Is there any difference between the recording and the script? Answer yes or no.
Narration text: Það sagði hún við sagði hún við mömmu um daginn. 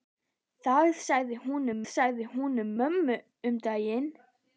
no